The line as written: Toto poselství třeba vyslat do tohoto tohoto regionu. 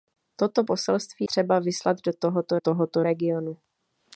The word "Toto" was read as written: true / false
true